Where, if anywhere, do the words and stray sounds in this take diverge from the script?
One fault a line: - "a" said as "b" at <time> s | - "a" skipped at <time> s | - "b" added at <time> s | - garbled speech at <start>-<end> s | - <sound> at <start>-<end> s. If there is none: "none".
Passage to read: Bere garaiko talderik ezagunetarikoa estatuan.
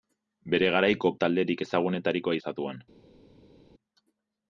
none